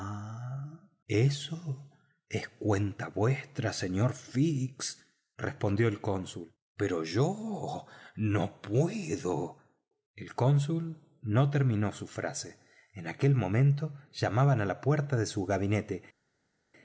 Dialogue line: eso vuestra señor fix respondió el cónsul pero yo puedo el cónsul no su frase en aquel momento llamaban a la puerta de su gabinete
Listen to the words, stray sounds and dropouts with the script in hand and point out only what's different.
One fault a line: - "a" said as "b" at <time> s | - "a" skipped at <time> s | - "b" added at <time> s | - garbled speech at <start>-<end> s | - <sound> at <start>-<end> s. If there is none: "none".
- "es cuenta" added at 2.3 s
- "no" added at 8.2 s
- "terminó" added at 11.5 s